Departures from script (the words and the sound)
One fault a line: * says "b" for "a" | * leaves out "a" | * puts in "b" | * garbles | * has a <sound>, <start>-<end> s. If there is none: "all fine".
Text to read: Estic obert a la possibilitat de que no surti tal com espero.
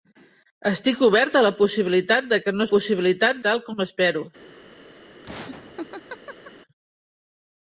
* says "possibilitat" for "surti"
* has a laugh, 5.2-6.5 s